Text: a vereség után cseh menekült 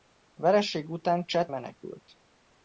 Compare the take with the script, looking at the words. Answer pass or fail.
pass